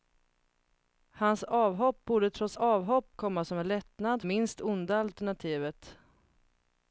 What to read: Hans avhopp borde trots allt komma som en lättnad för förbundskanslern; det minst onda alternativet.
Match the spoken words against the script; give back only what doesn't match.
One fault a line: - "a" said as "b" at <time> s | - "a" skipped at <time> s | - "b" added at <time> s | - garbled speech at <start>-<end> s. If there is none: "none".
- "allt" said as "avhopp" at 2.5 s
- "för förbundskanslern det" skipped at 4.2 s